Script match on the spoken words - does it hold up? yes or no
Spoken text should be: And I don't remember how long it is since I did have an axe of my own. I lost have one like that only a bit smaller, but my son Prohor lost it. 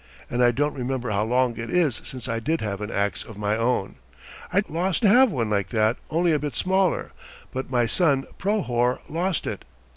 yes